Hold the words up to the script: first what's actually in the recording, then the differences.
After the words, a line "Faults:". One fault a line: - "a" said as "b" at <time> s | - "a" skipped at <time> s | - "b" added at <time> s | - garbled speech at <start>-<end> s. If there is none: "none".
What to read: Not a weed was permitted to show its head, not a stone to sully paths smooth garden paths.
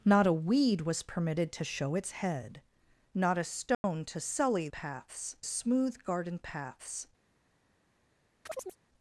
Not a weed was permitted to show its head, not a stone to sully paths smooth garden paths.
Faults:
none